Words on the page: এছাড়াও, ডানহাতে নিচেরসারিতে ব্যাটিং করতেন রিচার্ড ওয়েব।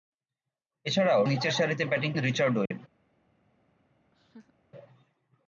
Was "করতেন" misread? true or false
true